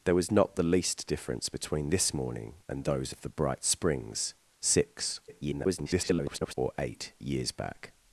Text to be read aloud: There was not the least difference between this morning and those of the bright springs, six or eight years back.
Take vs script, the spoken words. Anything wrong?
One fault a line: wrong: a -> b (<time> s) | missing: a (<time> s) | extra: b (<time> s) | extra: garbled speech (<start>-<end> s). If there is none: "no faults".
extra: garbled speech (5.3-6.5 s)